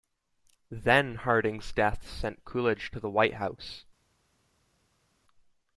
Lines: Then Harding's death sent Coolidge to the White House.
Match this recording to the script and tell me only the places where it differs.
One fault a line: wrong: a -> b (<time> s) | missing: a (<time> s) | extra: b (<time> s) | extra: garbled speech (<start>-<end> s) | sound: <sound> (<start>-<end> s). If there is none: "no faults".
no faults